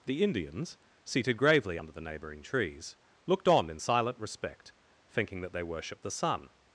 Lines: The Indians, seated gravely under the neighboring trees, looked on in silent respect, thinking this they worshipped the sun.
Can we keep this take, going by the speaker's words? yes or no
no